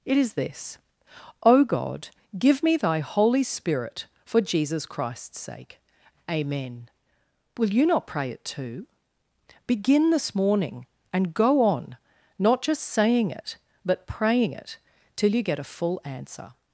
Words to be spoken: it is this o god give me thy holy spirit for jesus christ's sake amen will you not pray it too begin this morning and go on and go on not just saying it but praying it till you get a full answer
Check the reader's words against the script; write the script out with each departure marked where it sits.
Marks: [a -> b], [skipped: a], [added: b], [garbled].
it is this o god give me thy holy spirit for jesus christ's sake amen will you not pray it too begin this morning and go on [skipped: and go on] not just saying it but praying it till you get a full answer